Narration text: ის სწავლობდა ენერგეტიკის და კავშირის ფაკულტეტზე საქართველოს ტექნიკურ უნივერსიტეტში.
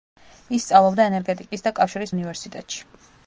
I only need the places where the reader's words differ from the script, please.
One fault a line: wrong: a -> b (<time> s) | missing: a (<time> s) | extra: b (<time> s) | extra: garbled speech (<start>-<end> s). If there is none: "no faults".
missing: ფაკულტეტზე საქართველოს ტექნიკურ (2.1 s)